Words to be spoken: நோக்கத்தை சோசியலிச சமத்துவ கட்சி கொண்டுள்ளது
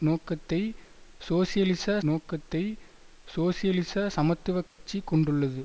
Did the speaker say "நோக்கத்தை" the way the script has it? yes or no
yes